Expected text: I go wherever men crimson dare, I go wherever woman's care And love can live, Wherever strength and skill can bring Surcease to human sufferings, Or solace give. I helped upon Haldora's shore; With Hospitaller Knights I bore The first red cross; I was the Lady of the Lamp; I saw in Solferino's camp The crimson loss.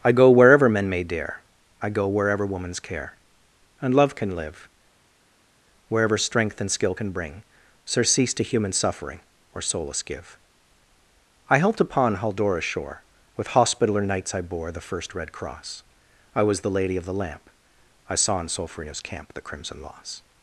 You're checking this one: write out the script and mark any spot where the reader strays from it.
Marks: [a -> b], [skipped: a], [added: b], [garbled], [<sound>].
I go wherever men [crimson -> may] dare, I go wherever woman's care And love can live, Wherever strength and skill can bring Surcease to human [sufferings, -> suffering] Or solace give. I helped upon Haldora's shore; With Hospitaller Knights I bore The first red cross; I was the Lady of the Lamp; I saw in Solferino's camp The crimson loss.